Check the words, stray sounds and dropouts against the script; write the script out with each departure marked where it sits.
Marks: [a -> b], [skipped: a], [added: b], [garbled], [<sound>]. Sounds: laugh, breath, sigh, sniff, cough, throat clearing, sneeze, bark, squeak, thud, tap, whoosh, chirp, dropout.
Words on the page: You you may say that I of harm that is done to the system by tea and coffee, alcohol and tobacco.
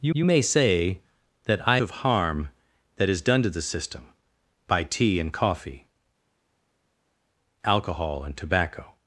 You you may say that I of harm that is done to the system by tea and coffee, alcohol and tobacco.